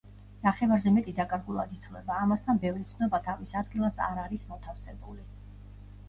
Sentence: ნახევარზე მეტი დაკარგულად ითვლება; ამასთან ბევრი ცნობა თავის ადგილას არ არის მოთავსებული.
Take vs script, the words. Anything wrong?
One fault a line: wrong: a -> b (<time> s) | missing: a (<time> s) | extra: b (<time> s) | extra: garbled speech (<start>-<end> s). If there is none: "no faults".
no faults